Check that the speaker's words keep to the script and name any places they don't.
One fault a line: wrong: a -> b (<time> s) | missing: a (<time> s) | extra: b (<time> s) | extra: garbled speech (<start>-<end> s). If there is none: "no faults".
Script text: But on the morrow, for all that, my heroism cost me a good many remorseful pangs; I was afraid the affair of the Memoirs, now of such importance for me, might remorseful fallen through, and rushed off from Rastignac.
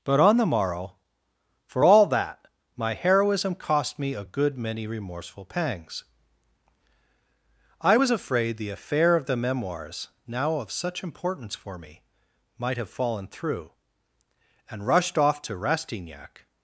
wrong: remorseful -> have (12.8 s)
wrong: from -> to (15.4 s)